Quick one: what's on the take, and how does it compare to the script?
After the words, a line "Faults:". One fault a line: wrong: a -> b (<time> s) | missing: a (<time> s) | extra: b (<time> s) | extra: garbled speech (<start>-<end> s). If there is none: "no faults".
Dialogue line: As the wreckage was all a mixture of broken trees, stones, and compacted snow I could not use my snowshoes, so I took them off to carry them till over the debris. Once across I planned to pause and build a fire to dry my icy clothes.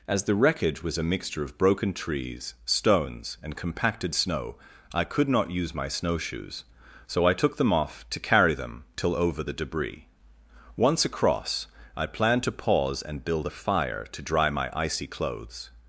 As the wreckage was a mixture of broken trees, stones, and compacted snow I could not use my snowshoes, so I took them off to carry them till over the debris. Once across I planned to pause and build a fire to dry my icy clothes.
Faults:
missing: all (1.0 s)